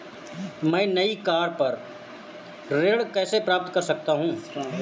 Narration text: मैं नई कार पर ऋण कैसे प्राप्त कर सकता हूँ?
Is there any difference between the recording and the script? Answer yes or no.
no